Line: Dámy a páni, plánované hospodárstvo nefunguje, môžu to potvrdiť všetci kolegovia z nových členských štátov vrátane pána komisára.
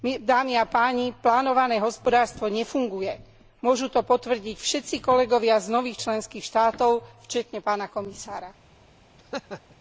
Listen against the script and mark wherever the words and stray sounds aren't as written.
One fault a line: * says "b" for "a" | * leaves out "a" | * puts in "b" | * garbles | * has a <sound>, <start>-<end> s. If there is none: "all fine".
* has a laugh, 9.2-9.8 s